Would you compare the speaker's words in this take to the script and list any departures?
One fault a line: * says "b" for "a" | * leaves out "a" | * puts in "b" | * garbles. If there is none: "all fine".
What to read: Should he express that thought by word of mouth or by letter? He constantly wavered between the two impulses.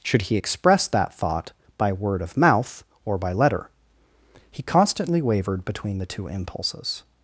all fine